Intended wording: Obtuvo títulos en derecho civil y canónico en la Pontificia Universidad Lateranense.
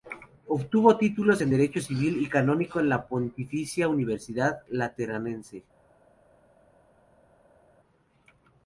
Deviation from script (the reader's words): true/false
false